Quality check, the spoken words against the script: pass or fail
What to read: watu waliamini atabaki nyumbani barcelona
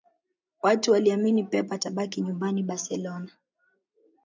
fail